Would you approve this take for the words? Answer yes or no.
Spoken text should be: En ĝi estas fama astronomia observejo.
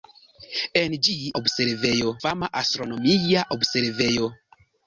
no